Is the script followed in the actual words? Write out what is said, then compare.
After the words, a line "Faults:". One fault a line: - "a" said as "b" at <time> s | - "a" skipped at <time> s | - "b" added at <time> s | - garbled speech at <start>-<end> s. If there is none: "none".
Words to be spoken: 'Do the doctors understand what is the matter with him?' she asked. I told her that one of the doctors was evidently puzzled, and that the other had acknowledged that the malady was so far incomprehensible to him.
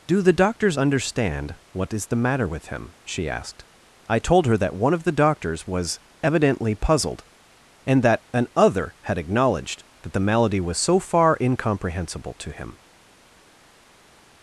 'Do the doctors understand what is the matter with him?' she asked. I told her that one of the doctors was evidently puzzled, and that an other had acknowledged that the malady was so far incomprehensible to him.
Faults:
- "the" said as "an" at 8.3 s